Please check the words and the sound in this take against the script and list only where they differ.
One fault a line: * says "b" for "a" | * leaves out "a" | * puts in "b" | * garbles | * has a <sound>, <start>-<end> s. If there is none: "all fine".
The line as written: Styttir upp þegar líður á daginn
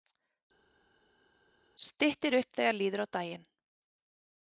all fine